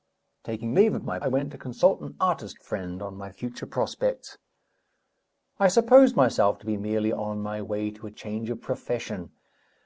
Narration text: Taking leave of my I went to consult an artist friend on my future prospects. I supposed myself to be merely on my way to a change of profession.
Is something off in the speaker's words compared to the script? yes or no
no